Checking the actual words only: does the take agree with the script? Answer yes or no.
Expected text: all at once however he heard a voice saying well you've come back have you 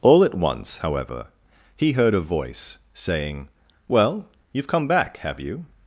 yes